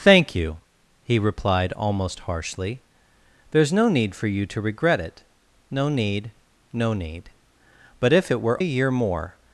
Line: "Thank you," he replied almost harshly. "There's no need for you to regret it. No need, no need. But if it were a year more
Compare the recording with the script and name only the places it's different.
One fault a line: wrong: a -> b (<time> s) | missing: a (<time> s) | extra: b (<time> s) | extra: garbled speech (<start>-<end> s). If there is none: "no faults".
no faults